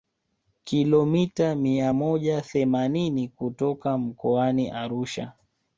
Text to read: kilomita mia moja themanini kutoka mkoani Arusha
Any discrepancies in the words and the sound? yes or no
no